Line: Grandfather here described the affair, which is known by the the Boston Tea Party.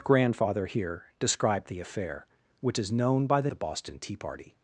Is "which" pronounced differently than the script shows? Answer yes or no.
no